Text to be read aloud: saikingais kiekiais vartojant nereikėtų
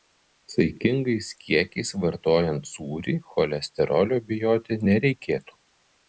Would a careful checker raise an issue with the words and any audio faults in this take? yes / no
yes